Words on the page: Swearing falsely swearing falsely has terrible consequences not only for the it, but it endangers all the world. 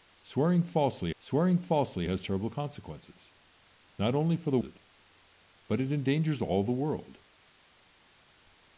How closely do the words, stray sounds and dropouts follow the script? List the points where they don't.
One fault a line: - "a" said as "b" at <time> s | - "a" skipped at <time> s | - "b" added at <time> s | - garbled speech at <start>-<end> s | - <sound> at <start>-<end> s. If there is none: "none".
none